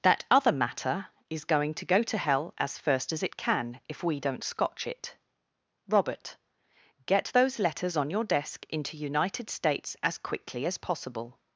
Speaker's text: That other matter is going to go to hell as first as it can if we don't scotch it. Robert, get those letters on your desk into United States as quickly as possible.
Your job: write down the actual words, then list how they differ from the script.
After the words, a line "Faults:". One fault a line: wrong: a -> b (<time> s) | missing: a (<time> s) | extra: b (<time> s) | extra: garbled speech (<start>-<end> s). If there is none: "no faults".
That other matter is going to go to hell as first as it can if we don't scotch it. Robert, get those letters on your desk into United States as quickly as possible.
Faults:
no faults